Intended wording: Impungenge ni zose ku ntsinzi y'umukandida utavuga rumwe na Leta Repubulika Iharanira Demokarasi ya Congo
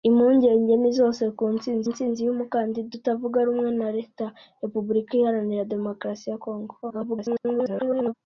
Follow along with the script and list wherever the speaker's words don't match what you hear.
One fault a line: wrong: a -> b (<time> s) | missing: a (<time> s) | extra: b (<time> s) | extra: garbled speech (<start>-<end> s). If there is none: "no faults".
extra: ntsinzi (1.9 s)
extra: garbled speech (6.8-8.1 s)